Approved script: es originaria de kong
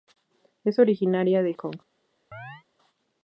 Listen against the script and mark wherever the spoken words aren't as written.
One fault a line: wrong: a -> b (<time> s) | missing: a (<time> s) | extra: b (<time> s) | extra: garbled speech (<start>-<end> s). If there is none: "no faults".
no faults